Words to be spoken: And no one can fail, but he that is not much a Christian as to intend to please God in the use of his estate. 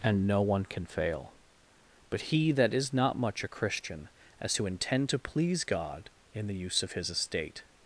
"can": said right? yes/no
yes